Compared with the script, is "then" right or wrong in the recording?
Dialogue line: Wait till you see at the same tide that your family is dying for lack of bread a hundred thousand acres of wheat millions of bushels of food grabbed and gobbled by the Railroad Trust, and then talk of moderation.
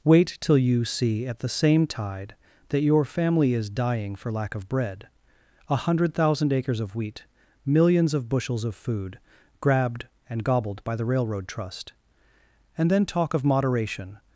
right